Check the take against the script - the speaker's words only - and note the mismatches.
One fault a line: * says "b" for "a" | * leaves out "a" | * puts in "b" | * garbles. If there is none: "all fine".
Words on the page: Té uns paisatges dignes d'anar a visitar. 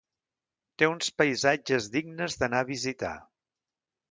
all fine